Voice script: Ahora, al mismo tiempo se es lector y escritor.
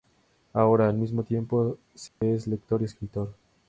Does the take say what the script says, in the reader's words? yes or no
yes